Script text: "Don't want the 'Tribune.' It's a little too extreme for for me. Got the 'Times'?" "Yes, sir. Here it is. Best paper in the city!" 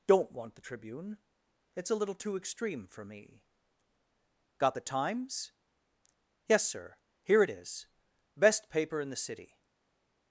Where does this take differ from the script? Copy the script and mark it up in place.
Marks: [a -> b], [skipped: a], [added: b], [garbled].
"Don't want the 'Tribune.' It's a little too extreme for [skipped: for] me. Got the 'Times'?" "Yes, sir. Here it is. Best paper in the city!"